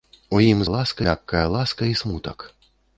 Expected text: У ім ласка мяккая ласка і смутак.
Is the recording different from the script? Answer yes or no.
no